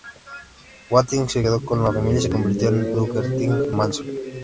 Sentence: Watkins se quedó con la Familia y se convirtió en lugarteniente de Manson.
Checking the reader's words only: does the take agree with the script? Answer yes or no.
no